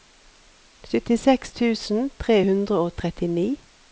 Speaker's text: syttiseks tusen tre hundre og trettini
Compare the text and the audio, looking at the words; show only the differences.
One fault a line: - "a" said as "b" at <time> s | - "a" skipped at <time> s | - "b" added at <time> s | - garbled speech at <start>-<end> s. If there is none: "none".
none